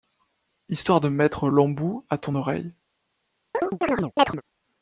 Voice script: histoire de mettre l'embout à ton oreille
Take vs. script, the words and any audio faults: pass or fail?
fail